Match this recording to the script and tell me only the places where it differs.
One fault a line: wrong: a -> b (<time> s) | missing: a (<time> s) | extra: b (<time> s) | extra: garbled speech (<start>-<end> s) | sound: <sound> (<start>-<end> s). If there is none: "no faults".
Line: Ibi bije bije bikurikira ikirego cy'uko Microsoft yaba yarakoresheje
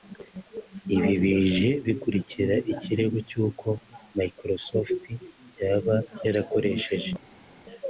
missing: bije (1.7 s)